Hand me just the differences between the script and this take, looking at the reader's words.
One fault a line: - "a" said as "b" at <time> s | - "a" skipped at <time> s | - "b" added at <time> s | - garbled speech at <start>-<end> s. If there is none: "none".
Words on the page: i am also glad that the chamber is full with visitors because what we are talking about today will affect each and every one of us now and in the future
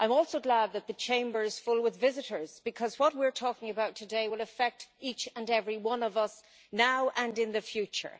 none